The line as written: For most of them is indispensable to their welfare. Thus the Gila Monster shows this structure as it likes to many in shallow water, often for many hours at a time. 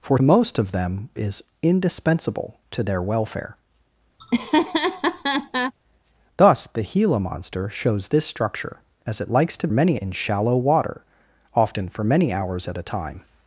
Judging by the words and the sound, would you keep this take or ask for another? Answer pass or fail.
fail